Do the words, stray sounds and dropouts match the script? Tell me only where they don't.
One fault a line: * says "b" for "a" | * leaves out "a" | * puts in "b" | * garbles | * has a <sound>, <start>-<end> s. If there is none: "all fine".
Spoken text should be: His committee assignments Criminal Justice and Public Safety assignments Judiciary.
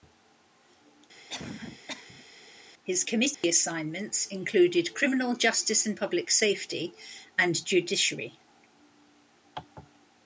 * has a cough, 1.3-2.3 s
* has a dropout, 3.3-3.4 s
* puts in "included"
* says "and" for "assignments"